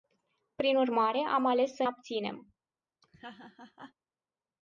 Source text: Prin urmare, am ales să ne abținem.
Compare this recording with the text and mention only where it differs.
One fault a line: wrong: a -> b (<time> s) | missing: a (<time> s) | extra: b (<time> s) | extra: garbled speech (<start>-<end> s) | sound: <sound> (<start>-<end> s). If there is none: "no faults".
missing: ne (1.9 s)
sound: laugh (3.0-3.9 s)